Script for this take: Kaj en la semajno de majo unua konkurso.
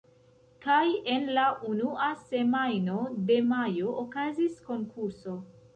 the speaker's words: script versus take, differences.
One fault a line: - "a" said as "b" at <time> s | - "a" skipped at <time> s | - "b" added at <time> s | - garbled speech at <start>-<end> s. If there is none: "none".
- "unua" added at 1.7 s
- "unua" said as "okazis" at 4.1 s